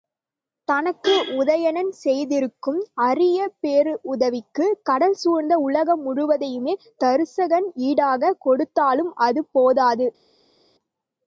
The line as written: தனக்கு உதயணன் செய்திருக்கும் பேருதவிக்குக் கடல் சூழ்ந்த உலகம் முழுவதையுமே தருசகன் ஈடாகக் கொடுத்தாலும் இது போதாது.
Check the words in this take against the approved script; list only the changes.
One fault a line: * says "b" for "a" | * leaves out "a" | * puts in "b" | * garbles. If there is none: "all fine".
* puts in "அரிய"
* says "அது" for "இது"